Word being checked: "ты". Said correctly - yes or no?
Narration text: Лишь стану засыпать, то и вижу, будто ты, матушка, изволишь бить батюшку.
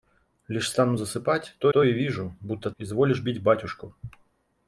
no